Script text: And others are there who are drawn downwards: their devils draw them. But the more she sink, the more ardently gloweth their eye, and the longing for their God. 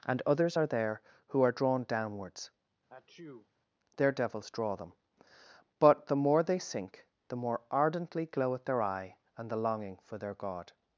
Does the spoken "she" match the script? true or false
false